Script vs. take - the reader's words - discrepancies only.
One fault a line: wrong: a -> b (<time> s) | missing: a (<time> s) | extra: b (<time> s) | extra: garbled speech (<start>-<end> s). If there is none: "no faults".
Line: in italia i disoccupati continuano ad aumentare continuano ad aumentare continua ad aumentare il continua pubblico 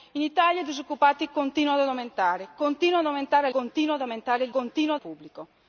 no faults